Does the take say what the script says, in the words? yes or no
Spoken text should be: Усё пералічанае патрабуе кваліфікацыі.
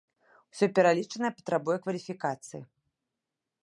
yes